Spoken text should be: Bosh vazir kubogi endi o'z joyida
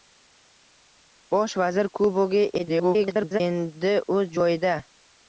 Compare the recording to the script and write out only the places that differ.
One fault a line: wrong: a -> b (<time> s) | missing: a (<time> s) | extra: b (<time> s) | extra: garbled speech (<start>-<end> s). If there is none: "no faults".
extra: garbled speech (2.6-3.4 s)